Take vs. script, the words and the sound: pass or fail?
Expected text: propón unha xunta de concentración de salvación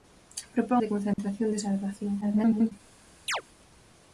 fail